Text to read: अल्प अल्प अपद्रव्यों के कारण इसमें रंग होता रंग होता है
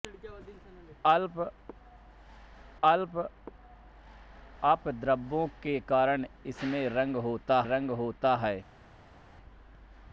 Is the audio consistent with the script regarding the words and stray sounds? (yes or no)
yes